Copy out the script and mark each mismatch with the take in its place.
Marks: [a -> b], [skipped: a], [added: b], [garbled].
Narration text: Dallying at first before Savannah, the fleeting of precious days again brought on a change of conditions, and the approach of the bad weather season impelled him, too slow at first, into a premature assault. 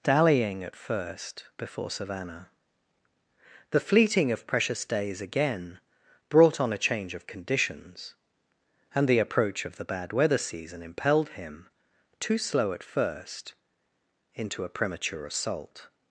Dallying at first before Savannah, the fleeting of precious days again brought on a change of conditions, and the approach of the bad weather season impelled him, too slow at first, into a premature assault.